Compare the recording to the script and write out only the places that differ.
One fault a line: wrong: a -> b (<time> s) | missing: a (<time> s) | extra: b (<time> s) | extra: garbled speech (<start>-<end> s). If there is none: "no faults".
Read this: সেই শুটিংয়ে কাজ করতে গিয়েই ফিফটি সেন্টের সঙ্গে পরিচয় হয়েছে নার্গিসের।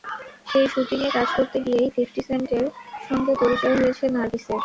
no faults